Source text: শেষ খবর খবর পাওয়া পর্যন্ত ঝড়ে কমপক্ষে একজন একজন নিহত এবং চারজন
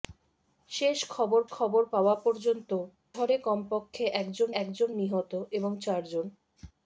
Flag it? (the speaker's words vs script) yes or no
no